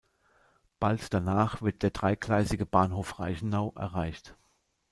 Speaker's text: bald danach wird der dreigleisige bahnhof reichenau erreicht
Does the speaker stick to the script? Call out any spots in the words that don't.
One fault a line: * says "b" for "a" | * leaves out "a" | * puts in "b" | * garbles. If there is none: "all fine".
all fine